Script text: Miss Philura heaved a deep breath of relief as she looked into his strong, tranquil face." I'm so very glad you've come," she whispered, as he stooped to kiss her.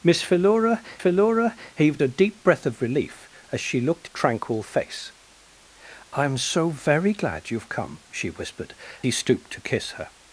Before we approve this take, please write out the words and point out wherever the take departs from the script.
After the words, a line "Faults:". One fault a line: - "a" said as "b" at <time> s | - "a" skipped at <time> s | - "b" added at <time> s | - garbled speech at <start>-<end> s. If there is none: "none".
Miss Philura Philura heaved a deep breath of relief as she looked tranquil face." I'm so very glad you've come," she whispered, he stooped to kiss her.
Faults:
- "Philura" added at 1.0 s
- "into his strong" skipped at 4.1 s
- "as" skipped at 8.7 s